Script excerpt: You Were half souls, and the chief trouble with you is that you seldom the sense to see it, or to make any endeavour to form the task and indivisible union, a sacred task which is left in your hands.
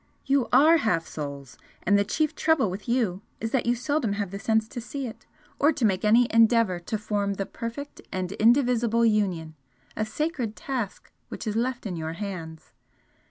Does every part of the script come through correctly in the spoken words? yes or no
no